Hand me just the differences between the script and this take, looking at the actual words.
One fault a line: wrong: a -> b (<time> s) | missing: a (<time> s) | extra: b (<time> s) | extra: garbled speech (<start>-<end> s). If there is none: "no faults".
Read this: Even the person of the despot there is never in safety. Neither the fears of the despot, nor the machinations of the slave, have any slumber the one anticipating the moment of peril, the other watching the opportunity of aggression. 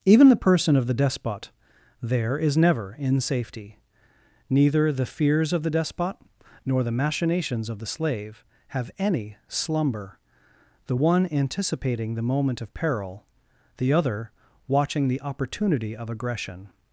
no faults